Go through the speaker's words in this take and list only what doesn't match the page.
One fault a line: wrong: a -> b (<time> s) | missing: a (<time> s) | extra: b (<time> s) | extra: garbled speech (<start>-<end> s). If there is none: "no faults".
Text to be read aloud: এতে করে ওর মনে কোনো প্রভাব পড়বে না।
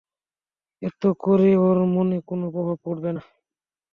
no faults